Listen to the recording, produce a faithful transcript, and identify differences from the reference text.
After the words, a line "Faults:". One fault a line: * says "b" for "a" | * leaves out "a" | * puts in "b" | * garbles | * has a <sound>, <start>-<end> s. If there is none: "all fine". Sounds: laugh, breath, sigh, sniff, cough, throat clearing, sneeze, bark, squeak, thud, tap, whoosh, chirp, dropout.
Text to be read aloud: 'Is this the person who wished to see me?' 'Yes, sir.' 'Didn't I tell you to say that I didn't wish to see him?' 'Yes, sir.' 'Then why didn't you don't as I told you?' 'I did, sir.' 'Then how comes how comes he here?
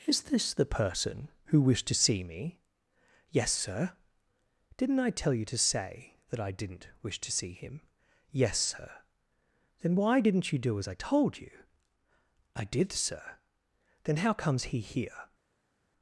'Is this the person who wished to see me?' 'Yes, sir.' 'Didn't I tell you to say that I didn't wish to see him?' 'Yes, sir.' 'Then why didn't you do as I told you?' 'I did, sir.' 'Then how comes he here?
Faults:
* says "do" for "don't"
* leaves out "how comes"